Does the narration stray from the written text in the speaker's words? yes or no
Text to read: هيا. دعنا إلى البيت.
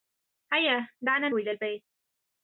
no